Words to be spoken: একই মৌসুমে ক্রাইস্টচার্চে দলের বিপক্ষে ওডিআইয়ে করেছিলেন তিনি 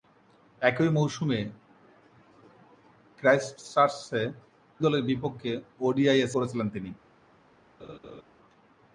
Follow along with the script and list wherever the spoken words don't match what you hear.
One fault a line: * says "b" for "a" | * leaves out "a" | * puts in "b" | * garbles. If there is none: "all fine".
all fine